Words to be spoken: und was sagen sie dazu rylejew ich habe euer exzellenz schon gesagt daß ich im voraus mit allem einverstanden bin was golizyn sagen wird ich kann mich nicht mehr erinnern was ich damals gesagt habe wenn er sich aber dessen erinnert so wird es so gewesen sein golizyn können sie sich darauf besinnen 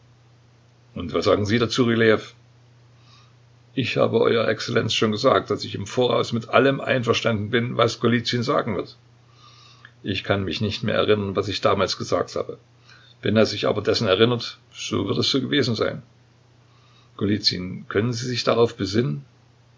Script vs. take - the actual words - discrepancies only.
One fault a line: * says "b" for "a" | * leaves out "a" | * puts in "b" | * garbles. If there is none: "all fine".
all fine